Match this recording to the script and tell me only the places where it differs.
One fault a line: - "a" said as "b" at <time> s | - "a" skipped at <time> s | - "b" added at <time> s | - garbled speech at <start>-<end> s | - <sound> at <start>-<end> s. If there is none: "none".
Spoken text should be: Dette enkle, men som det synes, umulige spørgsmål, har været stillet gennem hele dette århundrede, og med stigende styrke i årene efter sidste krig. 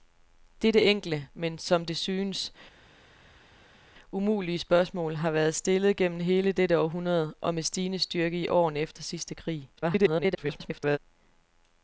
- garbled speech at 9.8-11.0 s